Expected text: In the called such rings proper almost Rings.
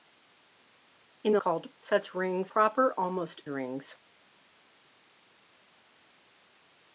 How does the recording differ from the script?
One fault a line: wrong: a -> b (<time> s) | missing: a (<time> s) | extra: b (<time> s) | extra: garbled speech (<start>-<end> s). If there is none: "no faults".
no faults